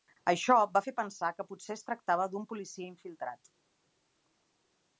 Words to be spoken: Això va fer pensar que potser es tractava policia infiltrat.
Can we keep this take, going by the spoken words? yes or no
no